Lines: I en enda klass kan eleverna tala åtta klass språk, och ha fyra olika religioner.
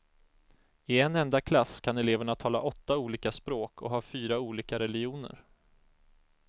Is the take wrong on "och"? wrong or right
right